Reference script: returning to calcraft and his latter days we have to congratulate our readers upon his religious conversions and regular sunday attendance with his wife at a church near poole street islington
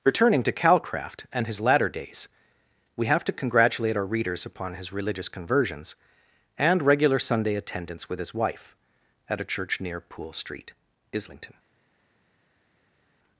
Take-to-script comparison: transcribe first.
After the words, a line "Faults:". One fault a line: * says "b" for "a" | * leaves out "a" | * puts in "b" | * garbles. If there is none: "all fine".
returning to calcraft and his latter days we have to congratulate our readers upon his religious conversions and regular sunday attendance with his wife at a church near poole street islington
Faults:
all fine